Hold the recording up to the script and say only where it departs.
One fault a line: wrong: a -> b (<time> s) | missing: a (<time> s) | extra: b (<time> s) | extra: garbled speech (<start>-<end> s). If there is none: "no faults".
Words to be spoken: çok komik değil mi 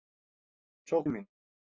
missing: komik değil (1.1 s)